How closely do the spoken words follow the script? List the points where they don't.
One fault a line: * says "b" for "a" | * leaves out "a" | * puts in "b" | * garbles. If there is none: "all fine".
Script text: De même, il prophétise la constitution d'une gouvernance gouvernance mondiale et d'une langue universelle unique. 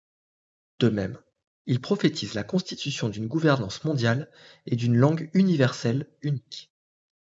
* leaves out "gouvernance"